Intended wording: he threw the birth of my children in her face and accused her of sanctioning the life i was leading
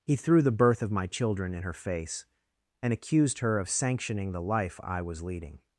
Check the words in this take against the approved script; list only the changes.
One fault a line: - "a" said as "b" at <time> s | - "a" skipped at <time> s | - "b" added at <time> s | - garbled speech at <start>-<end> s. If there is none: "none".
none